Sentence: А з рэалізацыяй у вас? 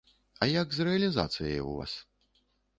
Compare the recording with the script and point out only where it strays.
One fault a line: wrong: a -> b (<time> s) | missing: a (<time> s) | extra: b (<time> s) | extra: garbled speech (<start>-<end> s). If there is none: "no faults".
extra: як (0.5 s)